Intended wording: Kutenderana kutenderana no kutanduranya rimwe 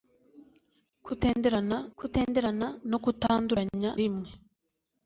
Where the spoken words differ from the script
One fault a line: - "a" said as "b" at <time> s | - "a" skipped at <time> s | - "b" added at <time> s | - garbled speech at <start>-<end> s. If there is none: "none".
none